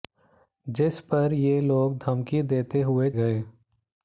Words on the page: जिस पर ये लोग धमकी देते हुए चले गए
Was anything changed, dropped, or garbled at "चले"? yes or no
yes